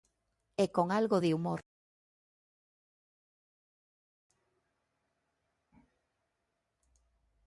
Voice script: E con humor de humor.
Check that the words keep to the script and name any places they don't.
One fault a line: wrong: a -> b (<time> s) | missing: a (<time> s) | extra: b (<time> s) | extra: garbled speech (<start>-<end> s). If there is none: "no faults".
wrong: humor -> algo (0.9 s)